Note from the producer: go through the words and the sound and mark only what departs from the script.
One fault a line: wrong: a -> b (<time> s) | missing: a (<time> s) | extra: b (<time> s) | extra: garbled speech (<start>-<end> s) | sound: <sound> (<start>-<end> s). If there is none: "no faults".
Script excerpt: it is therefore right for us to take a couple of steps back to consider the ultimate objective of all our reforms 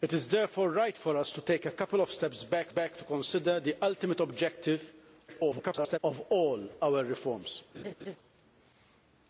extra: back (2.7 s)
extra: garbled speech (5.3-6.0 s)
sound: laugh (7.7-8.2 s)